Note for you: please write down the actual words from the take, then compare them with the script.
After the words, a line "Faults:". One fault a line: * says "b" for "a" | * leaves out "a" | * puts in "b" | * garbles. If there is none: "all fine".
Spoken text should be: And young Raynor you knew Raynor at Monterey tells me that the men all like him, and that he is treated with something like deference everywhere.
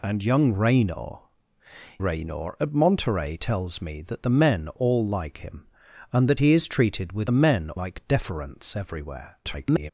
And young Raynor Raynor at Monterey tells me that the men all like him, and that he is treated with men like deference everywhere. [garbled]
Faults:
* leaves out "you knew"
* says "men" for "something"
* garbles